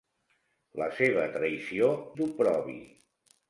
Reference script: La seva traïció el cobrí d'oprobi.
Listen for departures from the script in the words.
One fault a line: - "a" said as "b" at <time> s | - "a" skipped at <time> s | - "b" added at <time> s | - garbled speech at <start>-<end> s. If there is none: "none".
- "el cobrí" skipped at 1.9 s